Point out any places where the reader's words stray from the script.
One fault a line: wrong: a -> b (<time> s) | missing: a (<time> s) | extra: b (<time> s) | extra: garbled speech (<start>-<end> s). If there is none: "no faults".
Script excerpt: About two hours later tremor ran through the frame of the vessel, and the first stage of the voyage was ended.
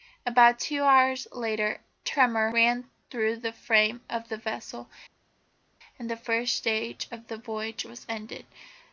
no faults